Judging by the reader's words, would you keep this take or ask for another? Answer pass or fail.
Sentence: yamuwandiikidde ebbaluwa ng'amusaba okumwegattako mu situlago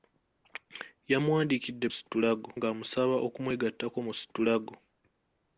fail